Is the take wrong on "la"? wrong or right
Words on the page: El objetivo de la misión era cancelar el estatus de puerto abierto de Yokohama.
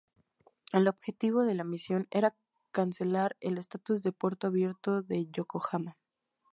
right